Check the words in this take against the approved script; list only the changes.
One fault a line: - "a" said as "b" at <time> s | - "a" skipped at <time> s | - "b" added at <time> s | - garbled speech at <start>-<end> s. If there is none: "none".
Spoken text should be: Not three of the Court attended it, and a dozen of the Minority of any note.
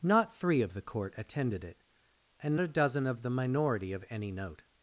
none